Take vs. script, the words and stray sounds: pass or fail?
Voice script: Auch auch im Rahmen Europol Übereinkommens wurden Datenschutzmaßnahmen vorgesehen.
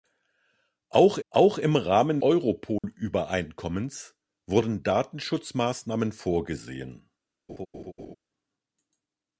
fail